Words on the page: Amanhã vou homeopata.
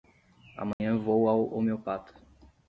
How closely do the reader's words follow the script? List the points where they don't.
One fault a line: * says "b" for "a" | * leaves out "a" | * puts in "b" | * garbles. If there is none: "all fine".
* puts in "ao"